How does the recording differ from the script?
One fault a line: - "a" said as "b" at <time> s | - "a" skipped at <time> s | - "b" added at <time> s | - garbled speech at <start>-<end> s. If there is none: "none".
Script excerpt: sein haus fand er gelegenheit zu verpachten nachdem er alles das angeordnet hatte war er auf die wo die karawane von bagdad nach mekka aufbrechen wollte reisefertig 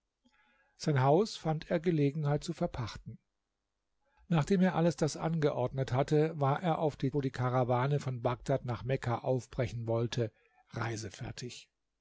none